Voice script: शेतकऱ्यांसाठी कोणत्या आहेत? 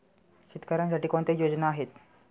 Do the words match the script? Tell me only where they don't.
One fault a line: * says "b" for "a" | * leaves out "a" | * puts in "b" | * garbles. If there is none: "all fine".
* puts in "योजना"